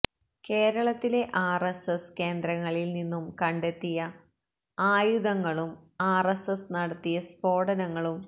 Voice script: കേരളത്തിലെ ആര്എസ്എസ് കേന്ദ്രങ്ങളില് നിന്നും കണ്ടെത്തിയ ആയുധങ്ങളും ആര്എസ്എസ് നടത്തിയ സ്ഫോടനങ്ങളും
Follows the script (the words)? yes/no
yes